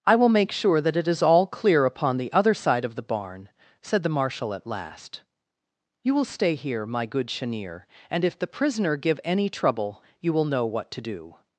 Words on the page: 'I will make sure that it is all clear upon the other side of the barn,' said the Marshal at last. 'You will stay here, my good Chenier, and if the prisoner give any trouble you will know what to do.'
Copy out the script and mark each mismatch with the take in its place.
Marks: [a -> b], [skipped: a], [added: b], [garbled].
'I will make sure that it is all clear upon the other side of the barn,' said the Marshal at last. 'You will stay here, my good Chenier, and if the prisoner give any trouble you will know what to do.'